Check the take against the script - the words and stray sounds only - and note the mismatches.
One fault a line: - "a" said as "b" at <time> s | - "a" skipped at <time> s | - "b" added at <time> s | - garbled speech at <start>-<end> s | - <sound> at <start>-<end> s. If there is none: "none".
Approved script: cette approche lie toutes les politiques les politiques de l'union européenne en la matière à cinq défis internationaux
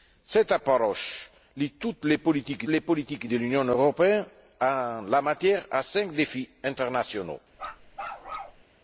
- bark at 7.5-8.6 s